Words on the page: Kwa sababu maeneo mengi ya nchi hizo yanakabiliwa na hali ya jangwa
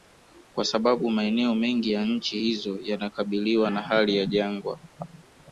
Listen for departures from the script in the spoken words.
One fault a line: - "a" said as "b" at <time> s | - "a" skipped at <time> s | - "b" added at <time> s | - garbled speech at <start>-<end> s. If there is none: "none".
none